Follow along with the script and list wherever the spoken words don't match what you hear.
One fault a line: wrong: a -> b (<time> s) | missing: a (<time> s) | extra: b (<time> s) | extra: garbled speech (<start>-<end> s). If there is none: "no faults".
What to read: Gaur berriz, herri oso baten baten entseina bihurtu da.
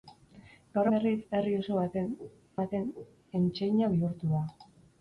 no faults